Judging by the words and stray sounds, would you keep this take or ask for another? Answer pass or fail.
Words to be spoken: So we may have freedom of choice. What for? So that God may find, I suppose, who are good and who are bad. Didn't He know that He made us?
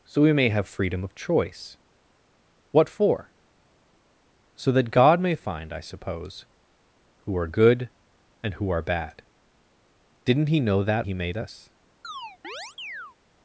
fail